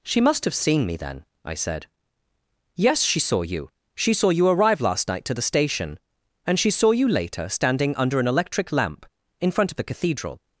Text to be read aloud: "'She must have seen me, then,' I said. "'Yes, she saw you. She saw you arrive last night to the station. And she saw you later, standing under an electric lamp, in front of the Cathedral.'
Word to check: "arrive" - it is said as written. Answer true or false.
true